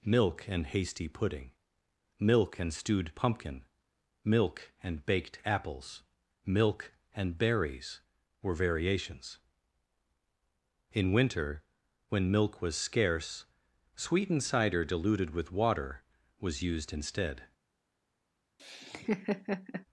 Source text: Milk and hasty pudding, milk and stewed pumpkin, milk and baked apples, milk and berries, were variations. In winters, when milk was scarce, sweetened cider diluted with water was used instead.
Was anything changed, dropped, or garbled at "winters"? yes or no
yes